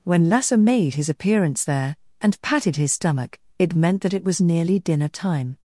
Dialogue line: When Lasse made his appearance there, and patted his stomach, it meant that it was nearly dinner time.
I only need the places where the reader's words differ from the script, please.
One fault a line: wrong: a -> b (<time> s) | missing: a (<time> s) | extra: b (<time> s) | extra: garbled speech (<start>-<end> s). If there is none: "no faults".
no faults